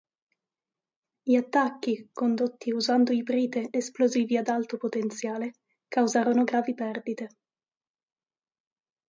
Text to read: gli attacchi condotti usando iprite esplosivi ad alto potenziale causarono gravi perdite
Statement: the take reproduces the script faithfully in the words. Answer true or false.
true